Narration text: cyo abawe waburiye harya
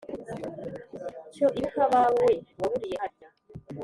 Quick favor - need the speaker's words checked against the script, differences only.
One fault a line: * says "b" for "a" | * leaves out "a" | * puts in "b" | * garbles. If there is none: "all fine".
* puts in "ibuka"